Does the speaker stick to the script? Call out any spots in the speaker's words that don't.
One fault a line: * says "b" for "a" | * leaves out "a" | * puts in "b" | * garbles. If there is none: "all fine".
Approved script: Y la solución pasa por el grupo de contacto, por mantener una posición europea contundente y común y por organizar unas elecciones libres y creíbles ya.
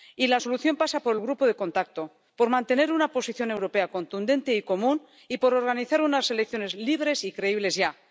all fine